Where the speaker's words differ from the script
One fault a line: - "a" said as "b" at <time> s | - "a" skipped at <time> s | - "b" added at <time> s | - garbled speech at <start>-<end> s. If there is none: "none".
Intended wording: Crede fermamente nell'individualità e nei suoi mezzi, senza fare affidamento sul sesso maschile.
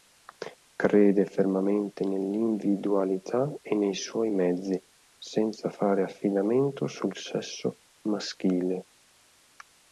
none